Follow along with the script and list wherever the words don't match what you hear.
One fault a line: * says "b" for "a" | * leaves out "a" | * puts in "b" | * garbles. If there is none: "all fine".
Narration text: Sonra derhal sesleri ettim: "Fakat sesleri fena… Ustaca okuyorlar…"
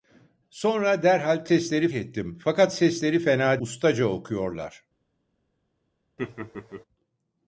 all fine